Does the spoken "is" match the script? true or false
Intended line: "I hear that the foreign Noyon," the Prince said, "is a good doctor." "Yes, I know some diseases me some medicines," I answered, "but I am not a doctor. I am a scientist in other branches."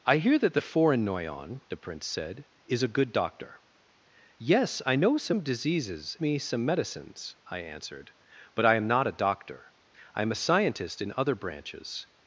true